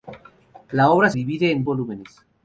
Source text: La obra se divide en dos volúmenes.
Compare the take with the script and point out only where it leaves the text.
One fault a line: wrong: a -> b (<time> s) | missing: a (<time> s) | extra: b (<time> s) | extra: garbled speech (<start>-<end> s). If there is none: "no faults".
missing: se (1.1 s)
missing: dos (1.6 s)